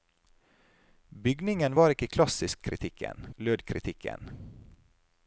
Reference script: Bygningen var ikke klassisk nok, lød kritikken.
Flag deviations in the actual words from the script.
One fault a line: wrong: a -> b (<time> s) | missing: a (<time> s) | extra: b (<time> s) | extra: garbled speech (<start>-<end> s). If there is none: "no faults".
wrong: nok -> kritikken (2.7 s)